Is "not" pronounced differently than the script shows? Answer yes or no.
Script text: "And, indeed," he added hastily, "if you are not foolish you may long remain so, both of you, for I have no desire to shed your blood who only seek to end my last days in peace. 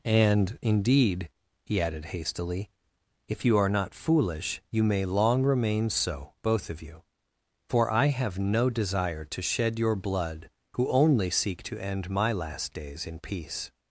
no